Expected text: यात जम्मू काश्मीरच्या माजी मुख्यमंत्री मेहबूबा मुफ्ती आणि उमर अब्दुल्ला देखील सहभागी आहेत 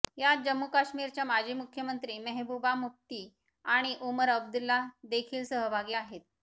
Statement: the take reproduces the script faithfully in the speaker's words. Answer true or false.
true